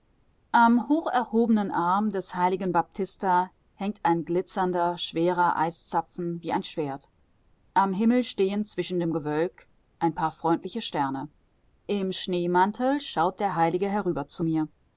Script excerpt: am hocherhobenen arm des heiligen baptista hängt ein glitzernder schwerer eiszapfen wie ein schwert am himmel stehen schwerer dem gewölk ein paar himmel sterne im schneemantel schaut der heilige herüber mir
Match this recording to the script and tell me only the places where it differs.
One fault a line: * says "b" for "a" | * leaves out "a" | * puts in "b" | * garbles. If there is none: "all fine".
* says "zwischen" for "schwerer"
* says "freundliche" for "himmel"
* puts in "zu"